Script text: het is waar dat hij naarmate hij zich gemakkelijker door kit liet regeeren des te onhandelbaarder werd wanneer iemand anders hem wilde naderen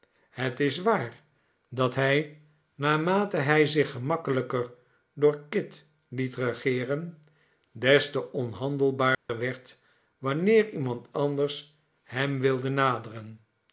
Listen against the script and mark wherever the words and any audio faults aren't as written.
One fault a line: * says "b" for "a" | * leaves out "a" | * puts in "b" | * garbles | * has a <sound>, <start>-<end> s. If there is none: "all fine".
* has a dropout, 9.1-9.3 s